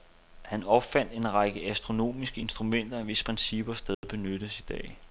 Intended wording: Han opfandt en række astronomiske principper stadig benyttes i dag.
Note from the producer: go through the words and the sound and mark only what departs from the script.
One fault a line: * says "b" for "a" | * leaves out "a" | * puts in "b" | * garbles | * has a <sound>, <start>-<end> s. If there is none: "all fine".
* puts in "instrumenter hvis"
* has a dropout, 3.9-4.0 s